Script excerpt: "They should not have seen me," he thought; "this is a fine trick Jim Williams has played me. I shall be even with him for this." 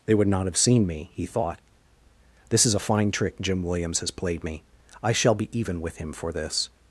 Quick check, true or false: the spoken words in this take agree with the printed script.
false